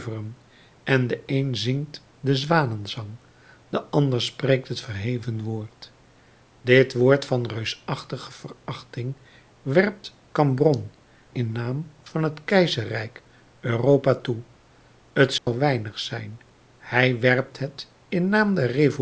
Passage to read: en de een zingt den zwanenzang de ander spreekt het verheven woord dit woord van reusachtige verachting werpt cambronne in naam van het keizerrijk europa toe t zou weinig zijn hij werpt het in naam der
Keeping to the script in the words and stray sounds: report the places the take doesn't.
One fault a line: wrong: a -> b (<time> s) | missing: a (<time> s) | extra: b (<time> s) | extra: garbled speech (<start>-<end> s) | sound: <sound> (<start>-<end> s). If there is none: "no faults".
sound: dropout (15.4-15.5 s)